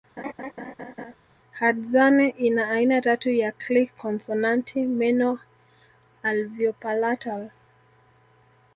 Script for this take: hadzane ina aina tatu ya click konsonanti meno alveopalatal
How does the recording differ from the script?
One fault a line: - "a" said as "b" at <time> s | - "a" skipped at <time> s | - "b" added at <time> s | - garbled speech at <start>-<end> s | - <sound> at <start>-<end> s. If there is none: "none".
- laugh at 0.2-1.2 s